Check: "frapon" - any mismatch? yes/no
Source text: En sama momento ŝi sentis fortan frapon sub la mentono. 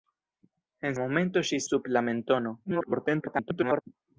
yes